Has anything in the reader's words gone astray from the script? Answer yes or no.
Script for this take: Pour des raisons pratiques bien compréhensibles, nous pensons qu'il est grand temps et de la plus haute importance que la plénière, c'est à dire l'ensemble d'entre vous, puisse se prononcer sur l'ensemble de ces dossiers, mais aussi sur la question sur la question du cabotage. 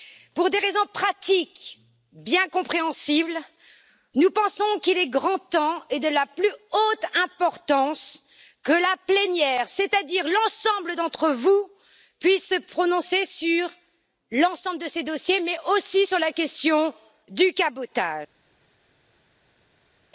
yes